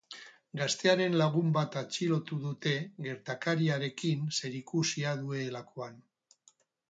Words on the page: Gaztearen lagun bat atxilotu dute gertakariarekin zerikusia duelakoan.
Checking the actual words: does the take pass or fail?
pass